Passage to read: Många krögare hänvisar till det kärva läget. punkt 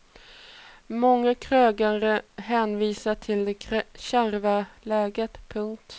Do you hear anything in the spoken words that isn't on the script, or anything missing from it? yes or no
no